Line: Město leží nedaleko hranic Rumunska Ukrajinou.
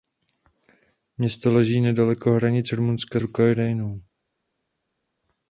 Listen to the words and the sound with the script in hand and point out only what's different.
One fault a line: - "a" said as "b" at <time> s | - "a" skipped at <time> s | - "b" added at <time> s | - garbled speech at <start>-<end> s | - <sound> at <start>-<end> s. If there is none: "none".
none